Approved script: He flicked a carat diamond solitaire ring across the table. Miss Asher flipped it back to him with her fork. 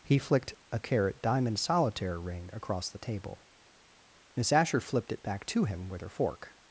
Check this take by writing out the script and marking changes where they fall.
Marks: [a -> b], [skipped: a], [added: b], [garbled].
He flicked a carat diamond solitaire ring across the table. Miss Asher flipped it back to him with her fork.